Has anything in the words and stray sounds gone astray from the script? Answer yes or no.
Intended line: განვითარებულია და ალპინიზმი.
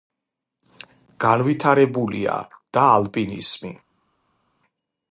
no